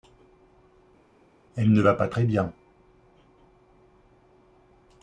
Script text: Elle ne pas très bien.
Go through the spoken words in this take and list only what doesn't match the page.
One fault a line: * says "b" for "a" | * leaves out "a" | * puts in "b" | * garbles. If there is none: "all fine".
* puts in "va"